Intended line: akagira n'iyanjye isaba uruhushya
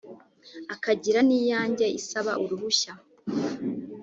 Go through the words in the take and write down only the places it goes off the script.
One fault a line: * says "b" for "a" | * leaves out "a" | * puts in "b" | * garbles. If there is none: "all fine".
all fine